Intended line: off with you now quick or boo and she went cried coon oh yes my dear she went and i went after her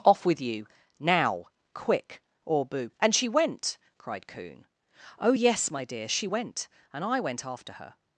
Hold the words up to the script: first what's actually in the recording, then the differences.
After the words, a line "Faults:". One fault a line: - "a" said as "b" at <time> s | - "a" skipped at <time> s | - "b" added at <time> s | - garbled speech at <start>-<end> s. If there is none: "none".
off with you now quick or boo and she went cried coon oh yes my dear she went and i went after her
Faults:
none